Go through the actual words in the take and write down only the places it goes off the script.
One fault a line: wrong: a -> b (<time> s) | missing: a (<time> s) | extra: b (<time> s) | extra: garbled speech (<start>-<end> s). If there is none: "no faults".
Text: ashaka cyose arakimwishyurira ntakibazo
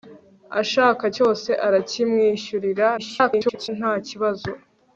extra: garbled speech (3.0-3.7 s)